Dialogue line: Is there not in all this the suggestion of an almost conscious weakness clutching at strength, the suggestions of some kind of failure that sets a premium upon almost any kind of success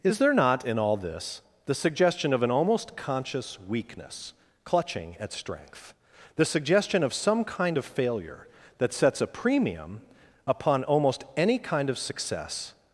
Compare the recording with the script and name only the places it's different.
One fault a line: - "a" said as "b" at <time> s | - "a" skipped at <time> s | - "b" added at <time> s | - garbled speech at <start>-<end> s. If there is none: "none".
- "suggestions" said as "suggestion" at 6.5 s